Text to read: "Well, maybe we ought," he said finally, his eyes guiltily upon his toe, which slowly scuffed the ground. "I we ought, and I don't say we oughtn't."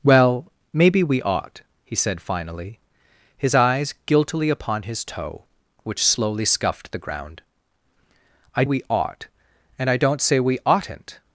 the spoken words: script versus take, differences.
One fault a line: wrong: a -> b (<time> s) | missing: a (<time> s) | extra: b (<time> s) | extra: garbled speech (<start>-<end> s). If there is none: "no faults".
no faults